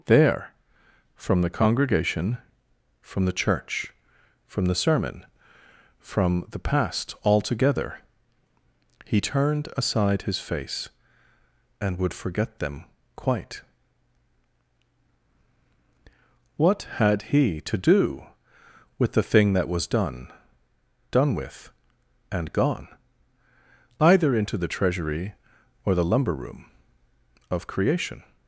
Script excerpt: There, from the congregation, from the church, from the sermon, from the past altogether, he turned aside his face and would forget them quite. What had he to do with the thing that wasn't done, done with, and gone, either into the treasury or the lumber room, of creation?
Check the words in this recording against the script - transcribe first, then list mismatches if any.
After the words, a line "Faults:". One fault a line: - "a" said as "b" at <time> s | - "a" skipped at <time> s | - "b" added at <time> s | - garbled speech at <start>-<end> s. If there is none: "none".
There, from the congregation, from the church, from the sermon, from the past altogether, he turned aside his face and would forget them quite. What had he to do with the thing that was done, done with, and gone, either into the treasury or the lumber room, of creation?
Faults:
- "wasn't" said as "was" at 19.7 s